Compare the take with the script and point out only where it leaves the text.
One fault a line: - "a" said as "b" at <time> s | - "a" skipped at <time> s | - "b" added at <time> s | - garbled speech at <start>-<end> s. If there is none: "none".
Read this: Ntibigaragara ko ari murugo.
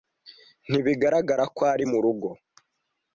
none